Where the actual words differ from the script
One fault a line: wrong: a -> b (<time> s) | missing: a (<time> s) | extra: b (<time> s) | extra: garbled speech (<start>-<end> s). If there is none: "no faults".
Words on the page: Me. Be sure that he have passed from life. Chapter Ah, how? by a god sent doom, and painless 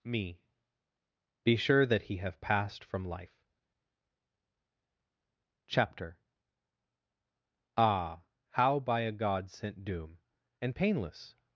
no faults